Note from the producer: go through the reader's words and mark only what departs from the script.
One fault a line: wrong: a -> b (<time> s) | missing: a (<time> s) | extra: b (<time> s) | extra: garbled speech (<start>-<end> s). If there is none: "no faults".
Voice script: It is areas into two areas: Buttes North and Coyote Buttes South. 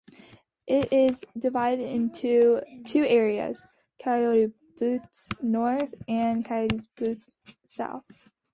wrong: areas -> divided (1.4 s)
extra: Coyote (4.0 s)